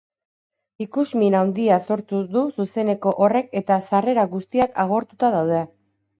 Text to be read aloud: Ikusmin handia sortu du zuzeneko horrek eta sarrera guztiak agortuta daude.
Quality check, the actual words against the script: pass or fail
pass